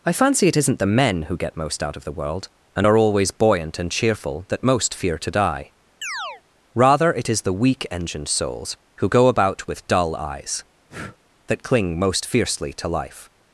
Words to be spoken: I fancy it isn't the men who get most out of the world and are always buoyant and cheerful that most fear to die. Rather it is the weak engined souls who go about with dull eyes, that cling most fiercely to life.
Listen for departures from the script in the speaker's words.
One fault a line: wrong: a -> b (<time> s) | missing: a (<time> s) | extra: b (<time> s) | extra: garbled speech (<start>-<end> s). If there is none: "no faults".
no faults